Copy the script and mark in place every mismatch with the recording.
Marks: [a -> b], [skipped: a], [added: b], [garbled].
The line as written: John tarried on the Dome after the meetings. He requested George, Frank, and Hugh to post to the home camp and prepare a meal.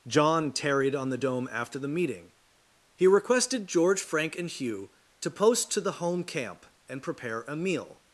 John tarried on the Dome after the [meetings. -> meeting] He requested George, Frank, and Hugh to post to the home camp and prepare a meal.